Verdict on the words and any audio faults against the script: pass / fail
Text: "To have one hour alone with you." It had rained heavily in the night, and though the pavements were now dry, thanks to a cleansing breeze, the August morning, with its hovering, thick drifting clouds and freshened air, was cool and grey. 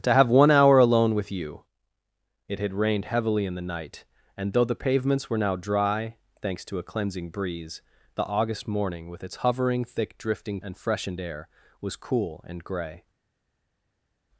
fail